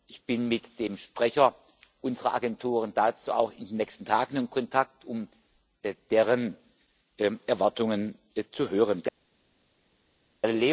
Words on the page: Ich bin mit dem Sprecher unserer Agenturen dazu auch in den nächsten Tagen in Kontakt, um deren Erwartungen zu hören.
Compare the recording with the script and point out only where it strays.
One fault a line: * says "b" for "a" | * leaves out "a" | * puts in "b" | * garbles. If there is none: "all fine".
all fine